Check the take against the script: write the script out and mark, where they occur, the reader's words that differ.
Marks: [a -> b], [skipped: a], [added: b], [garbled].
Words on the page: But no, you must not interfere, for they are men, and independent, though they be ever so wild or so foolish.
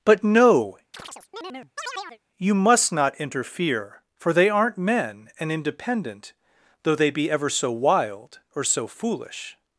But no, you must not interfere, for they [are -> aren't] men, and independent, though they be ever so wild or so foolish.